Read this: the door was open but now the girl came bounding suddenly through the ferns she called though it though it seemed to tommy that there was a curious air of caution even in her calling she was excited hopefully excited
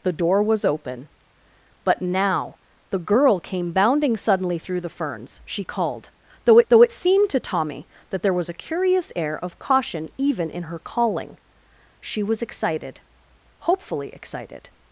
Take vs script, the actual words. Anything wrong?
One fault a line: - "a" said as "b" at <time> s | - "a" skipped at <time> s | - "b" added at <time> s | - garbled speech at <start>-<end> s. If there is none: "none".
none